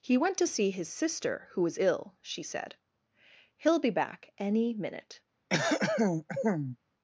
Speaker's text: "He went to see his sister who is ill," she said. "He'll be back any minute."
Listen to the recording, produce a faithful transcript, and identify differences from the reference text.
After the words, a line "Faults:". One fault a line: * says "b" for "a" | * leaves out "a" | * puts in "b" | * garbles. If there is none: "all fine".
"He went to see his sister who was ill," she said. "He'll be back any minute."
Faults:
* says "was" for "is"